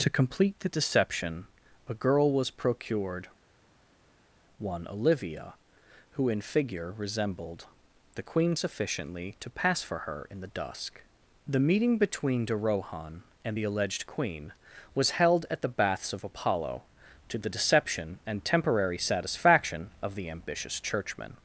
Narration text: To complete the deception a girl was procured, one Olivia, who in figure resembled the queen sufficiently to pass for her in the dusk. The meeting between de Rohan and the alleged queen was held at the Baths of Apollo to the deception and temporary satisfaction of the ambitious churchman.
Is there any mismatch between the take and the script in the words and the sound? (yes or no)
no